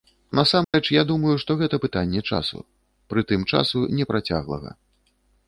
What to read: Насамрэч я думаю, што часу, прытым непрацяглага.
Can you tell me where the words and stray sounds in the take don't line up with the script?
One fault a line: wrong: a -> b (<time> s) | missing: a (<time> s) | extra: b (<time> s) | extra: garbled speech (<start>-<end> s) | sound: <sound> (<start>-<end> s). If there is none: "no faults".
sound: dropout (0.6-0.7 s)
extra: гэта пытанне (1.6 s)
extra: часу (3.6 s)